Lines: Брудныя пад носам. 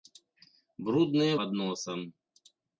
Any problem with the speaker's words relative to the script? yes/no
no